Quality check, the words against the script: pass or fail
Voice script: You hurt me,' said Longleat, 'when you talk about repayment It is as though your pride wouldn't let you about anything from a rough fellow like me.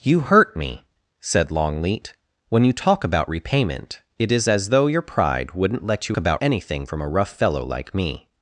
pass